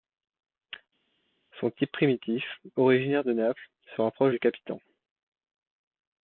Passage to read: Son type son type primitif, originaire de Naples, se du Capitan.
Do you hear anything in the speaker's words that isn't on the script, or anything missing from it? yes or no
yes